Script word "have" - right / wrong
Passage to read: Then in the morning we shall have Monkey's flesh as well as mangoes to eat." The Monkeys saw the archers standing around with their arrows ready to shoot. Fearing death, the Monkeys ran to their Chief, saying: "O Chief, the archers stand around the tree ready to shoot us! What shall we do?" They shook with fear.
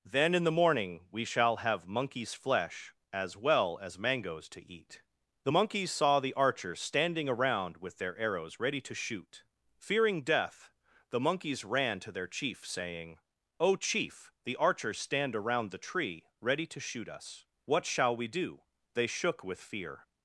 right